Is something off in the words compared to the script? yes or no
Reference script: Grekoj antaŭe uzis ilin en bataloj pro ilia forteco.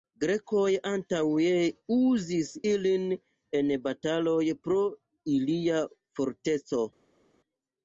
no